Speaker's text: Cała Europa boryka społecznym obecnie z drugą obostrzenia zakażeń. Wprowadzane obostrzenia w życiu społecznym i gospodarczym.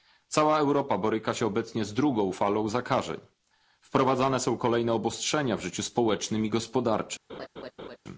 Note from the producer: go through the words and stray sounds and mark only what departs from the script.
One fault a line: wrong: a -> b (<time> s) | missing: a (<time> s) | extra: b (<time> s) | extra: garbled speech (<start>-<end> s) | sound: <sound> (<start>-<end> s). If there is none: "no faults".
wrong: społecznym -> się (1.3 s)
wrong: obostrzenia -> falą (2.3 s)
extra: są kolejne (4.4 s)
sound: laugh (7.3-8.0 s)